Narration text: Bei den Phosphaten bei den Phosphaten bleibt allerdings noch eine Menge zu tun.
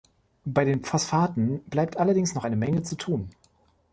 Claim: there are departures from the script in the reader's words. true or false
true